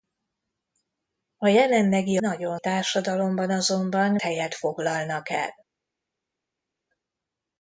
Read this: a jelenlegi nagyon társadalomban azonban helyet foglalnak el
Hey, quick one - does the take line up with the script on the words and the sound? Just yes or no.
yes